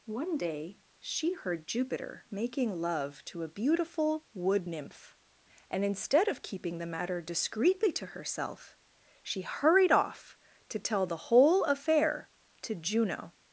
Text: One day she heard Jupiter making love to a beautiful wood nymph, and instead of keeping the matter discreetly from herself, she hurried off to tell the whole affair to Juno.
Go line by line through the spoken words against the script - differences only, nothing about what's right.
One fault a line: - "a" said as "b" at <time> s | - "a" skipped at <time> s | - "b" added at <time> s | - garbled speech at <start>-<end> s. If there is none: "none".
- "from" said as "to" at 7.9 s